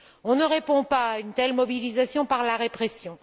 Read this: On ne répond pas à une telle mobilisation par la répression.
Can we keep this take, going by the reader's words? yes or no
yes